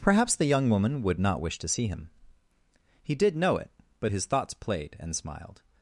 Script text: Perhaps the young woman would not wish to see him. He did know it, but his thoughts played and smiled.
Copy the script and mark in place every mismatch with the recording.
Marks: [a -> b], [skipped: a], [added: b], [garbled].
Perhaps the young woman would not wish to see him. He did know it, but his thoughts played and smiled.